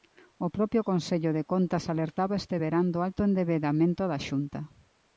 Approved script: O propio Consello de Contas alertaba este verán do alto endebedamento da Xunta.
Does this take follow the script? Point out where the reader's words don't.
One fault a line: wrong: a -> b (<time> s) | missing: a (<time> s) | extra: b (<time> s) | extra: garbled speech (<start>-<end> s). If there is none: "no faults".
no faults